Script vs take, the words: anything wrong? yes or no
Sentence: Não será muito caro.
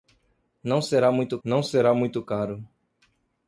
yes